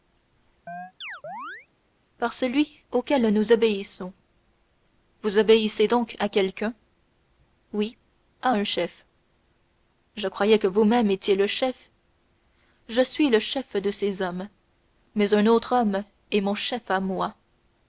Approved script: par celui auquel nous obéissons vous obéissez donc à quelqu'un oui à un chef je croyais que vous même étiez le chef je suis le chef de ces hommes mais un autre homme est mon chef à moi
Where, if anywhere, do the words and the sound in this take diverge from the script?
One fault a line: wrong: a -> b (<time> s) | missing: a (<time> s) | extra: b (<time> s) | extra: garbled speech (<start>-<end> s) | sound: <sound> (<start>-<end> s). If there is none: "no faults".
sound: chirp (0.7-1.7 s)